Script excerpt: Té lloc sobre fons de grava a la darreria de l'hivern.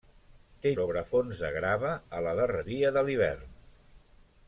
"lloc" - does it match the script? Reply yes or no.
no